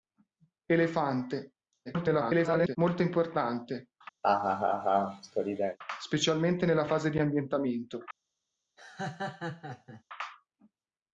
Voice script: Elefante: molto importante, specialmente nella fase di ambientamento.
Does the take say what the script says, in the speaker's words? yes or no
no